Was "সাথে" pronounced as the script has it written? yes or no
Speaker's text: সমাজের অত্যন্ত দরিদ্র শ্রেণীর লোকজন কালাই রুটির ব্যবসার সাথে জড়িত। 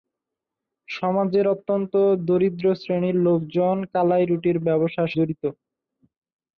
no